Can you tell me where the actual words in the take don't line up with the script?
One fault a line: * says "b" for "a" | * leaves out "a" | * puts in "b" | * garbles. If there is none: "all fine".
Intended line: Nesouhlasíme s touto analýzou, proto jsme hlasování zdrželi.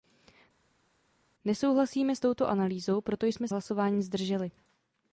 all fine